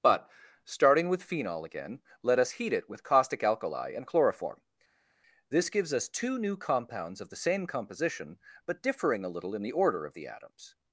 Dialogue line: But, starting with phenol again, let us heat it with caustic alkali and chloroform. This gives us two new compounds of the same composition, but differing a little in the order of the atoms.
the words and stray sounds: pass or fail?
pass